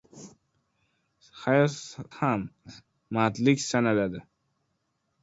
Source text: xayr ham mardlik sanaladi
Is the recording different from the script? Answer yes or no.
no